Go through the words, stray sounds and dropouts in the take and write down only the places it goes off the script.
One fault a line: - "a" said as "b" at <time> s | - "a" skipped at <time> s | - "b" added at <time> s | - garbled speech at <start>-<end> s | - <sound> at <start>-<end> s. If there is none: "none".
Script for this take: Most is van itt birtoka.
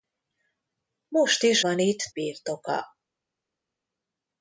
none